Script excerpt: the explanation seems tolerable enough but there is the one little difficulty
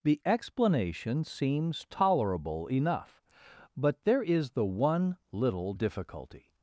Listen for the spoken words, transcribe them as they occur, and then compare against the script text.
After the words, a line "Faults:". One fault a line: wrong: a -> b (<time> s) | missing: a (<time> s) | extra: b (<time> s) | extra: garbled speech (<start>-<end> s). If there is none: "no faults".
the explanation seems tolerable enough but there is the one little difficulty
Faults:
no faults